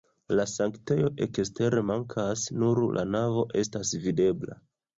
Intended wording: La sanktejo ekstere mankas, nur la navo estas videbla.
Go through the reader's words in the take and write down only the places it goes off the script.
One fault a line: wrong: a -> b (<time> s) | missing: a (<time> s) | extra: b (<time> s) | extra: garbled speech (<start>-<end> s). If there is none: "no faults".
no faults